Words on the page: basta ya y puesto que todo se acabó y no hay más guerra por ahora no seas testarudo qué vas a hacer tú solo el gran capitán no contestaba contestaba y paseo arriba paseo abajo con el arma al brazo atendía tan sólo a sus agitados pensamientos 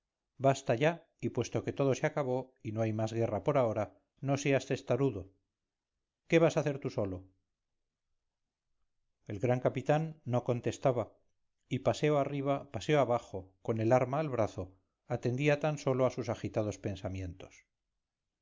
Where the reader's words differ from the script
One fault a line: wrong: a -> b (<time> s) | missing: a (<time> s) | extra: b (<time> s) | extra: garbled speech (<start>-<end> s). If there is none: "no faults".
missing: contestaba (11.1 s)